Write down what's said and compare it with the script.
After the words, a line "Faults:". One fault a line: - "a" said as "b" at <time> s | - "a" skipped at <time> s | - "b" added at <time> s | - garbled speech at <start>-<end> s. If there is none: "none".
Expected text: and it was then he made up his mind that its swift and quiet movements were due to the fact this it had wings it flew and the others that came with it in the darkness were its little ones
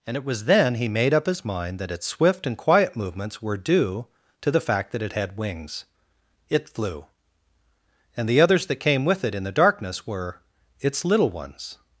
and it was then he made up his mind that its swift and quiet movements were due to the fact that it had wings it flew and the others that came with it in the darkness were its little ones
Faults:
- "this" said as "that" at 4.9 s